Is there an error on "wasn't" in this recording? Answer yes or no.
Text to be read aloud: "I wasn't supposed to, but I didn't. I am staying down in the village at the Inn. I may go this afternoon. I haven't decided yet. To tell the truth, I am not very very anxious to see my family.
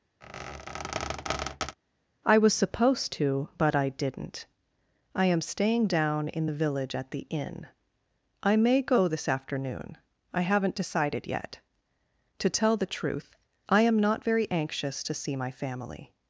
yes